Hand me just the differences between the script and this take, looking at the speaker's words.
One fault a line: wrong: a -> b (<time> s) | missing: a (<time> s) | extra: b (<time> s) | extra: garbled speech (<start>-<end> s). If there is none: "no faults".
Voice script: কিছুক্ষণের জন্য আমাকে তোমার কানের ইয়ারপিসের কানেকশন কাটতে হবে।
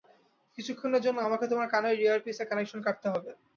no faults